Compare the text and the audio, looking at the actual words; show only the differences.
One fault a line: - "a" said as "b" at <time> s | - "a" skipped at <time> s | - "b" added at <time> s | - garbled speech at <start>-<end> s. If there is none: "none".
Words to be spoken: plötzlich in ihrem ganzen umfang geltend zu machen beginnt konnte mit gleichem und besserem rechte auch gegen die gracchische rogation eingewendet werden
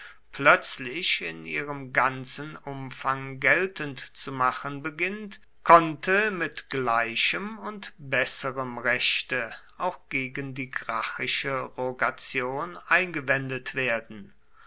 none